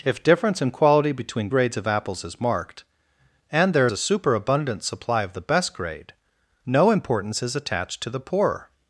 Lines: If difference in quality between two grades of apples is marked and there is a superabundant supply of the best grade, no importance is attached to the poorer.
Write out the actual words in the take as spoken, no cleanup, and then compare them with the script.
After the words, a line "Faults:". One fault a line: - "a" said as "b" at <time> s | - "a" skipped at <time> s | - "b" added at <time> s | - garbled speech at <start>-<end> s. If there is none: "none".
If difference in quality between grades of apples is marked and there a superabundant supply of the best grade, no importance is attached to the poorer.
Faults:
- "two" skipped at 1.5 s
- "is" skipped at 3.9 s